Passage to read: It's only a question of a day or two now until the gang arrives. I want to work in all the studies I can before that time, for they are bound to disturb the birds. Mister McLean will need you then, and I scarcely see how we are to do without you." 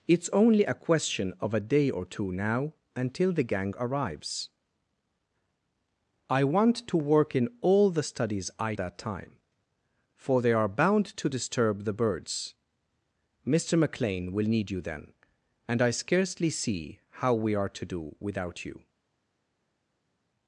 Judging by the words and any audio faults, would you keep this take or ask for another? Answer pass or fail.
fail